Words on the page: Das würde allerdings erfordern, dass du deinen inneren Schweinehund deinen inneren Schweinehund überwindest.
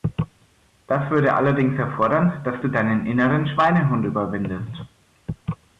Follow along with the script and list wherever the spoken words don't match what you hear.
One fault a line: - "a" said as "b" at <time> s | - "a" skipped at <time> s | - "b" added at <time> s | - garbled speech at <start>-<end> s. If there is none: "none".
- "deinen inneren Schweinehund" skipped at 4.1 s